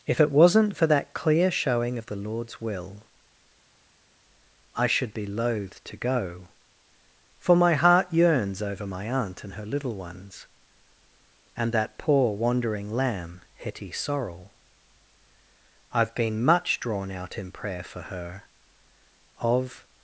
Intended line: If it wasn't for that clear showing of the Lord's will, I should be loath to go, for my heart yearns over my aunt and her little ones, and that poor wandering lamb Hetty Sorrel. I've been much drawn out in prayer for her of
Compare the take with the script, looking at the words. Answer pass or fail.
pass